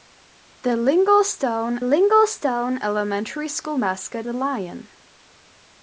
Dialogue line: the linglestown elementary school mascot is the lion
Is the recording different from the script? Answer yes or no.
yes